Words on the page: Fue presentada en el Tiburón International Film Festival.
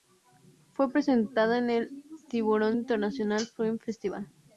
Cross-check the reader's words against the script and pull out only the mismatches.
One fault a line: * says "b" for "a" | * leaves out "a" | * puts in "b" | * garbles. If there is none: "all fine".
all fine